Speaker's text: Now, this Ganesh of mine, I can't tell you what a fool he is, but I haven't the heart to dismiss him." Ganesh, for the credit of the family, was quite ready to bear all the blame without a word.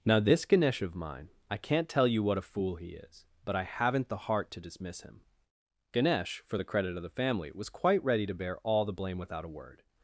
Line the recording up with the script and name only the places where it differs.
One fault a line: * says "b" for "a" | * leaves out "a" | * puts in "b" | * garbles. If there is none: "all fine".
all fine